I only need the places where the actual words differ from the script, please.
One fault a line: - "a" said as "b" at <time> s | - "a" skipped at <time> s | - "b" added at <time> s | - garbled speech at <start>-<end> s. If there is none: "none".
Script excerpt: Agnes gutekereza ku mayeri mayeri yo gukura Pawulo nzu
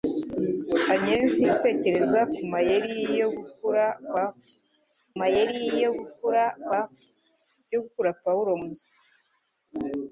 none